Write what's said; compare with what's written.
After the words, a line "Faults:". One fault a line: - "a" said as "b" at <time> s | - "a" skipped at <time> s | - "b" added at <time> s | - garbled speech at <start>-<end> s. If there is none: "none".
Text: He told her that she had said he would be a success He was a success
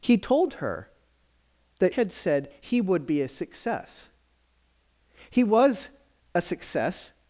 He told her that had said he would be a success He was a success
Faults:
- "she" skipped at 1.9 s